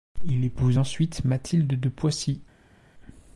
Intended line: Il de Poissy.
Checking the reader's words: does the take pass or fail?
fail